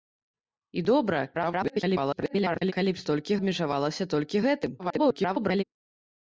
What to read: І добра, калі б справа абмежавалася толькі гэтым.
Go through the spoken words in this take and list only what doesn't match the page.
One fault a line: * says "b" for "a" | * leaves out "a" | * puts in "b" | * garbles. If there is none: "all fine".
* garbles
* says "толькі" for "справа"
* garbles